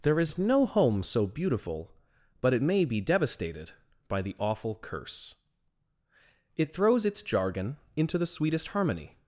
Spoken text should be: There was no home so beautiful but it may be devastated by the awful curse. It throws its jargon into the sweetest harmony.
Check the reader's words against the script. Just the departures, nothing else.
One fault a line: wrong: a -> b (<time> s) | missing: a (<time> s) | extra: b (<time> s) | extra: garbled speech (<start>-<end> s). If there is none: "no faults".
wrong: was -> is (0.2 s)